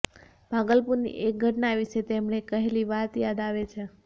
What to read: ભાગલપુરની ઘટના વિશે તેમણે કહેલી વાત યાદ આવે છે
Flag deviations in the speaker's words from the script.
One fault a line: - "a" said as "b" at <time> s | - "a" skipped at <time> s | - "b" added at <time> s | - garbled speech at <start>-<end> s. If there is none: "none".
- "એક" added at 1.2 s